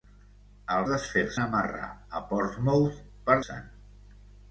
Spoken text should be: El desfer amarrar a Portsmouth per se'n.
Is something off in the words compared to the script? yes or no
no